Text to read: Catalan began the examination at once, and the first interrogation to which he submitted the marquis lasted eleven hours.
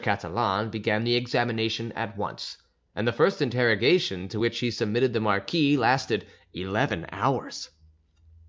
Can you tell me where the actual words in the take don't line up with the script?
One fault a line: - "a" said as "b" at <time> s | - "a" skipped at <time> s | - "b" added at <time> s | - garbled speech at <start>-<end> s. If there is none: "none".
none